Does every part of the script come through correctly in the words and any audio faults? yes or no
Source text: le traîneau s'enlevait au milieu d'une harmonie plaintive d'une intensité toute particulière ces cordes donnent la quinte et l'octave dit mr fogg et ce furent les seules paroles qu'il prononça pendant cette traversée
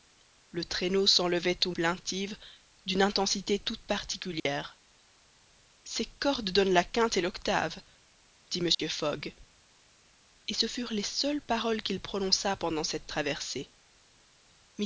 no